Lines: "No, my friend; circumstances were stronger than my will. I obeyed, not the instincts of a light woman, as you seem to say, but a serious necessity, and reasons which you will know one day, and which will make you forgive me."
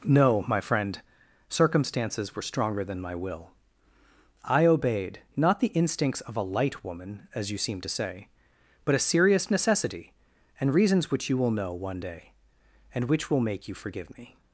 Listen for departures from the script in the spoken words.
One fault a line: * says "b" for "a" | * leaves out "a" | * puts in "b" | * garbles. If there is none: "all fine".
all fine